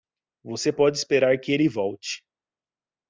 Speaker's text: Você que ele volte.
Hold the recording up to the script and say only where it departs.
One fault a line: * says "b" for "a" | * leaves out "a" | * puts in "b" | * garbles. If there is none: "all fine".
* puts in "pode esperar"